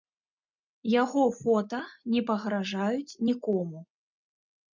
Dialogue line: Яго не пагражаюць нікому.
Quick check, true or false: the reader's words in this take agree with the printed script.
false